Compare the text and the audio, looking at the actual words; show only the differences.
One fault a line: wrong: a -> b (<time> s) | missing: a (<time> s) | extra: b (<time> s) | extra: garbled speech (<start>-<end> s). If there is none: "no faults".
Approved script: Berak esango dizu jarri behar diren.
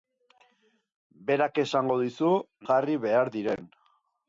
no faults